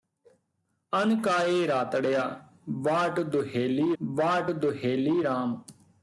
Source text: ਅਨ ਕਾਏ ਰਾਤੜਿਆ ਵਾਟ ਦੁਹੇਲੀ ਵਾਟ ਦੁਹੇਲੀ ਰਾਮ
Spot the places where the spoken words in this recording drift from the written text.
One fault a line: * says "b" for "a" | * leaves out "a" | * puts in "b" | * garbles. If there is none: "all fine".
all fine